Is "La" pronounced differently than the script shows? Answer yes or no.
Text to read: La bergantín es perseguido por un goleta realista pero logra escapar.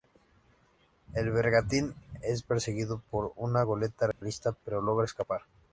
yes